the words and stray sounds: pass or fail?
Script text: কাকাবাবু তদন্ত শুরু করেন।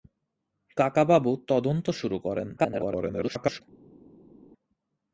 fail